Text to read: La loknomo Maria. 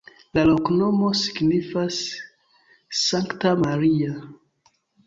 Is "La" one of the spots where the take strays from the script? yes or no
no